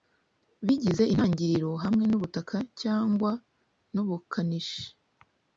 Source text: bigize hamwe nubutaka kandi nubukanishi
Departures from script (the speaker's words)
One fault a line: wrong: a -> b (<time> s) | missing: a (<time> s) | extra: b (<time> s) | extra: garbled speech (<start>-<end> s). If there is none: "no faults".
extra: intangiriro (1.1 s)
wrong: kandi -> cyangwa (2.8 s)